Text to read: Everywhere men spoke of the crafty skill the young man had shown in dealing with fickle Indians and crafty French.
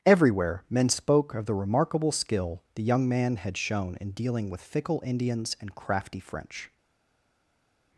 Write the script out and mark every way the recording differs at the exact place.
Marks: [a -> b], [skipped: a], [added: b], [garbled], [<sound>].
Everywhere men spoke of the [crafty -> remarkable] skill the young man had shown in dealing with fickle Indians and crafty French.